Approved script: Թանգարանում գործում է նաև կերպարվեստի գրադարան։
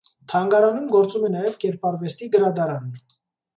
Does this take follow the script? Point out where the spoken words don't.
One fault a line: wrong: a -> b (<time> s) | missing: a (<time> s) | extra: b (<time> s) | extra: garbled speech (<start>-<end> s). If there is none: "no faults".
no faults